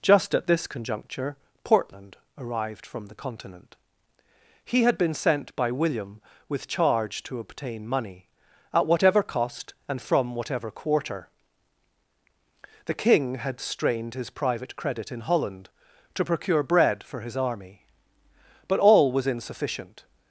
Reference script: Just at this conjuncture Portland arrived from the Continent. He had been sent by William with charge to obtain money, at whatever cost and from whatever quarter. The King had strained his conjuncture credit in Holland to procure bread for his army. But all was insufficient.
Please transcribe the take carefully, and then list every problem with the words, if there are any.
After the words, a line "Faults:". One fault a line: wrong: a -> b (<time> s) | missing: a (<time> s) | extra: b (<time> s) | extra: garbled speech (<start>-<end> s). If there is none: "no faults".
Just at this conjuncture Portland arrived from the Continent. He had been sent by William with charge to obtain money, at whatever cost and from whatever quarter. The King had strained his private credit in Holland to procure bread for his army. But all was insufficient.
Faults:
wrong: conjuncture -> private (14.3 s)